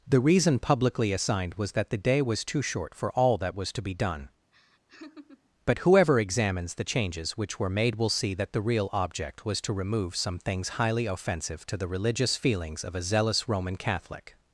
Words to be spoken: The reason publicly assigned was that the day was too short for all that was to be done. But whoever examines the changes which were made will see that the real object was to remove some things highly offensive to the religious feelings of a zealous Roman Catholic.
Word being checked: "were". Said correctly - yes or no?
yes